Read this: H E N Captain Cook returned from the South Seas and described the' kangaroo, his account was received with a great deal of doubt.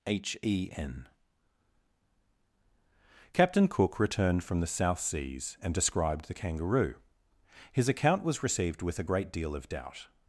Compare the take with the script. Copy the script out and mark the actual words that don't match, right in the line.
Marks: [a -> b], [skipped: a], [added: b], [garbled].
H E N Captain Cook returned from the South Seas and described the' kangaroo, his account was received with a great deal of doubt.